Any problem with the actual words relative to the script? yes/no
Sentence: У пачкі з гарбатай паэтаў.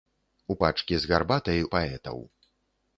no